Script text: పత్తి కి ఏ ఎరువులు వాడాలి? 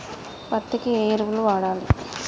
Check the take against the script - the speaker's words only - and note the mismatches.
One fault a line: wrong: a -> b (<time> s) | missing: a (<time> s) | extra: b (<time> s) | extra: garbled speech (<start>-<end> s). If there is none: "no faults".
no faults